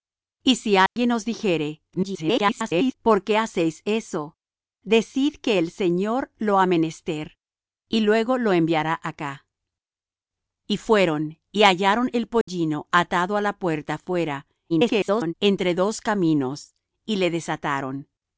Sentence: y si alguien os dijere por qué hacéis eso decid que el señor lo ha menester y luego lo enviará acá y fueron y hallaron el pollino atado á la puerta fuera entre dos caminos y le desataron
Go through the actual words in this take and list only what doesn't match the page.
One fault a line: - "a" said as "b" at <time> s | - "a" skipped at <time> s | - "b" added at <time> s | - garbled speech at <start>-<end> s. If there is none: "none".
- garbled speech at 1.9-2.9 s
- garbled speech at 14.7-15.3 s